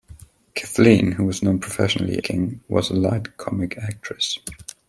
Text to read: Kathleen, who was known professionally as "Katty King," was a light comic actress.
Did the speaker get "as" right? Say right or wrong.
wrong